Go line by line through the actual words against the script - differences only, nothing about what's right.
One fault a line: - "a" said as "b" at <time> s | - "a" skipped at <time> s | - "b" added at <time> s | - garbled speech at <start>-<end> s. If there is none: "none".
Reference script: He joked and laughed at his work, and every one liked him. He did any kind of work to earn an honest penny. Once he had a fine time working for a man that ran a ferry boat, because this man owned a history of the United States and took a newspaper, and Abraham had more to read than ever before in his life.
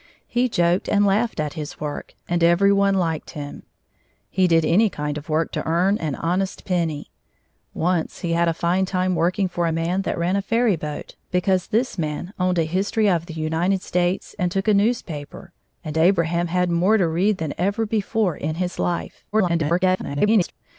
- garbled speech at 19.3-20.5 s